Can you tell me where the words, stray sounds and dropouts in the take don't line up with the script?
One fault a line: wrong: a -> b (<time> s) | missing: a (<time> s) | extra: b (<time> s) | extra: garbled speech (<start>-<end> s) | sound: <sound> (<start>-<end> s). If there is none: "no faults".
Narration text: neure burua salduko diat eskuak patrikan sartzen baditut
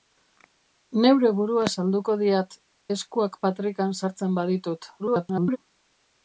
extra: garbled speech (5.0-5.6 s)